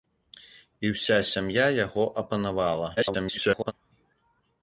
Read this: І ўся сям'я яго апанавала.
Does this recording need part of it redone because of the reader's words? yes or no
yes